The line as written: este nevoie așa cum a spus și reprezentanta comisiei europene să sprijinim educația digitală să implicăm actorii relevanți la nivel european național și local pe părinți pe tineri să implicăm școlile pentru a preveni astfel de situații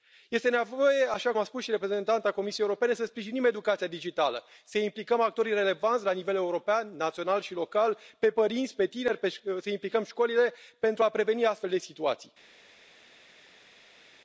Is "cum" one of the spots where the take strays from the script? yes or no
yes